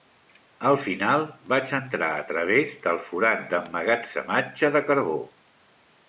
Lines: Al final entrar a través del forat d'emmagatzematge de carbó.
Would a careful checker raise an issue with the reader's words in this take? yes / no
yes